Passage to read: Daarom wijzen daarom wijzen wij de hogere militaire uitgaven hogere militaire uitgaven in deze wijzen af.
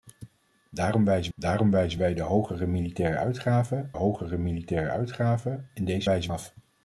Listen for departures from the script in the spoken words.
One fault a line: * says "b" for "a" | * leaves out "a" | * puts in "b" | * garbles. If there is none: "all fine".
all fine